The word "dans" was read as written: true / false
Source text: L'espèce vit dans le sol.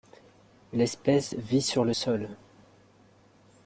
false